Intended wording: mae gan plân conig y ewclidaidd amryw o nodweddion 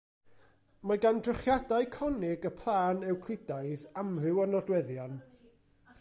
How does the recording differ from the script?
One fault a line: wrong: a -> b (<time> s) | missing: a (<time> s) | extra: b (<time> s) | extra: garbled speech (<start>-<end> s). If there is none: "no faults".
wrong: plân -> drychiadau (1.2 s)
extra: plân (2.6 s)